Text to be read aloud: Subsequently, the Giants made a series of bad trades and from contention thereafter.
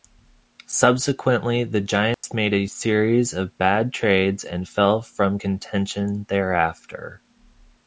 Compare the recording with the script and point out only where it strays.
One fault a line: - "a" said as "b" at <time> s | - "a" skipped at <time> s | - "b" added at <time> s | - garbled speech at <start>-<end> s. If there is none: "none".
- "fell" added at 4.7 s